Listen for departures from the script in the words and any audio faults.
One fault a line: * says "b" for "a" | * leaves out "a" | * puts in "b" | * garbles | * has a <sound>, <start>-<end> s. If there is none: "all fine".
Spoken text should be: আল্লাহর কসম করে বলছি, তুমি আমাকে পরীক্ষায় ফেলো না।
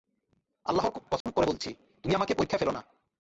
* has a dropout, 1.2-1.3 s